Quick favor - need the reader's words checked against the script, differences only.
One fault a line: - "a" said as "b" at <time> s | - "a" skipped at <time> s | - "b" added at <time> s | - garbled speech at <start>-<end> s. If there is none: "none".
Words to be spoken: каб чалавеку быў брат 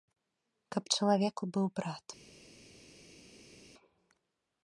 none